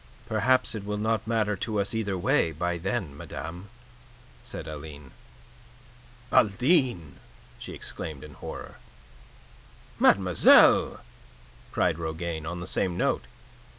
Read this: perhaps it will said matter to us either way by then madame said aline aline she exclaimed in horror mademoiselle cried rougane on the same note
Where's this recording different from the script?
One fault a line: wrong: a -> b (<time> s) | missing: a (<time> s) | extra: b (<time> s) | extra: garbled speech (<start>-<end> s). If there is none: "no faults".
wrong: said -> not (1.0 s)